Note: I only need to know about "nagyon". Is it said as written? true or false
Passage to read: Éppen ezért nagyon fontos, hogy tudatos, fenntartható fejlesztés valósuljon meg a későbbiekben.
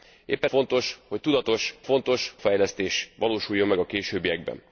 false